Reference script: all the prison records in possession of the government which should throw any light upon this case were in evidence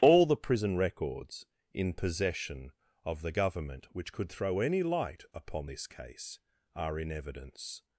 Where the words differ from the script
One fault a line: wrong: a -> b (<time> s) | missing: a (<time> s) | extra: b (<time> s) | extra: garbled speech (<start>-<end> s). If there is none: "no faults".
wrong: should -> could (4.1 s)
wrong: were -> are (6.7 s)